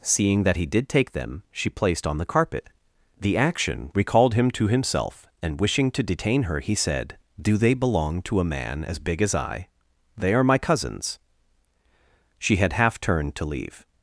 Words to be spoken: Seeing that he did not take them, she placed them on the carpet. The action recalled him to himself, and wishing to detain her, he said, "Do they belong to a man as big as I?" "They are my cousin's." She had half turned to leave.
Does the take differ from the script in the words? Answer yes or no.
yes